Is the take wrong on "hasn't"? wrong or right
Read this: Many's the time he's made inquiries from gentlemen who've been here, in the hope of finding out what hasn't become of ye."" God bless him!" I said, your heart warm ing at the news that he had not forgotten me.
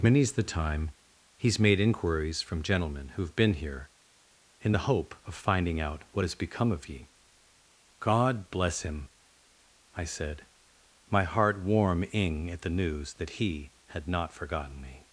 wrong